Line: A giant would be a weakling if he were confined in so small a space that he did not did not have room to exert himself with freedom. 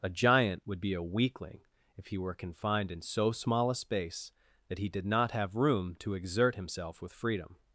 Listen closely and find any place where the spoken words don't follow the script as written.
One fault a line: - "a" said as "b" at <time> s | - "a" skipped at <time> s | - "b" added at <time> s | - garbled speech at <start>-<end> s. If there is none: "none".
- "did not" skipped at 5.3 s